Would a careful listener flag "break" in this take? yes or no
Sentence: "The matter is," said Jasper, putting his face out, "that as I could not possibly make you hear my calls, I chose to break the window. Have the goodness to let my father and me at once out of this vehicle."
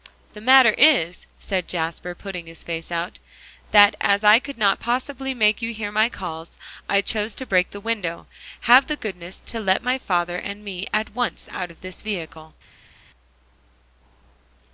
no